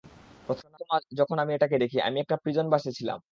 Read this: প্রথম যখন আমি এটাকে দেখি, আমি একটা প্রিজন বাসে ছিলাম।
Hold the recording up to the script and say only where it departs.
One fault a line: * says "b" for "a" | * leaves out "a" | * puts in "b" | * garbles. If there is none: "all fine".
all fine